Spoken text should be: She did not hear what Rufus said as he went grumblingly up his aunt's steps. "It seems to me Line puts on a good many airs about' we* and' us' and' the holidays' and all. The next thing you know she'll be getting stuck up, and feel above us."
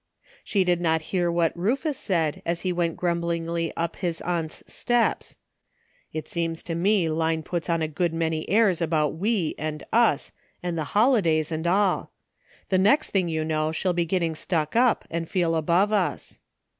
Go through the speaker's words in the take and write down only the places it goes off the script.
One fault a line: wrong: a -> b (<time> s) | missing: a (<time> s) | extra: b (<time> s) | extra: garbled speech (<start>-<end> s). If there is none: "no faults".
no faults